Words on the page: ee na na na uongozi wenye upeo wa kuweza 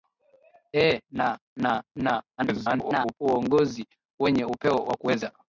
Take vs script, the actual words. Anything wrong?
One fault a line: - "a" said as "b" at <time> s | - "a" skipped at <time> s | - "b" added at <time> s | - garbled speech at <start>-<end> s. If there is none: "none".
- garbled speech at 2.4-3.2 s